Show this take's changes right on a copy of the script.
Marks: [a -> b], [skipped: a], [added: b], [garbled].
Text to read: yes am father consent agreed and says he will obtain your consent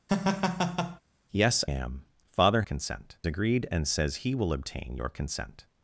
yes am father consent agreed and says he will obtain your consent